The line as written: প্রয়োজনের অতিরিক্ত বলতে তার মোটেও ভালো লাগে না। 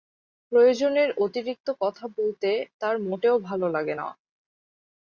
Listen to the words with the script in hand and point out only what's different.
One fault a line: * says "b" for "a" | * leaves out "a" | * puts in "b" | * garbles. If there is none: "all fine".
* puts in "কথা"